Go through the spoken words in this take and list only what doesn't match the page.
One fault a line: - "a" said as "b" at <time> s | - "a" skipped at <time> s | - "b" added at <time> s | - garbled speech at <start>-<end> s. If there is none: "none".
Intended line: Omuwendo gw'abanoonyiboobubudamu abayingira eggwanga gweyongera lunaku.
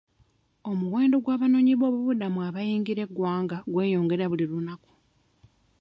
- "buli" added at 4.3 s